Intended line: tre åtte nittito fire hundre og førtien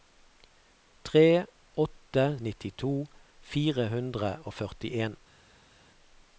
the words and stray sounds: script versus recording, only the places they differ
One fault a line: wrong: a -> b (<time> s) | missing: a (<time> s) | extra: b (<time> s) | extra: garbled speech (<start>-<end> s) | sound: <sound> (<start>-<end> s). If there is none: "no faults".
no faults